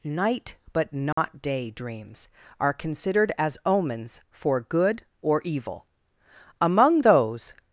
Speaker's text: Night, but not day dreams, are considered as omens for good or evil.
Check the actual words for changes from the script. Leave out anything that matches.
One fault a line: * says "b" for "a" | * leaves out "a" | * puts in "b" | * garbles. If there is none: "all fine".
* puts in "Among those"